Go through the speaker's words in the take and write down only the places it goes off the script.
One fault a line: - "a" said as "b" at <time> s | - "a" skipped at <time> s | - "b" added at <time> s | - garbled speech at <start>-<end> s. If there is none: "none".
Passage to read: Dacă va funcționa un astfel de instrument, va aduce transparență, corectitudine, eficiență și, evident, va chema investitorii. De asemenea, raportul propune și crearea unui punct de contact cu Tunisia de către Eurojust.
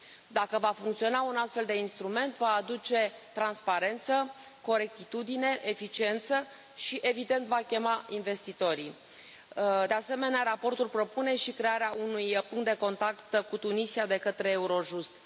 none